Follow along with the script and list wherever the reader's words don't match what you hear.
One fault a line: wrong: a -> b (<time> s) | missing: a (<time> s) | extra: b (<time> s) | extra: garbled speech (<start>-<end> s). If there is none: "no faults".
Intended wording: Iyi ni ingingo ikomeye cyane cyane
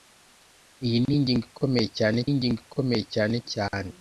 extra: ingingo ikomeye cyane (2.3 s)